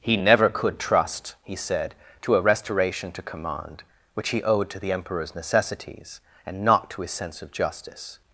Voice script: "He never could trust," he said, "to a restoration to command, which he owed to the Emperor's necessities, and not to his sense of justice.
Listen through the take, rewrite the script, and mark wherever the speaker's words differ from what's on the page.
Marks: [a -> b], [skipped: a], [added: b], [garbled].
"He never could trust," he said, "to a restoration to command, which he owed to the Emperor's necessities, and not to his sense of justice.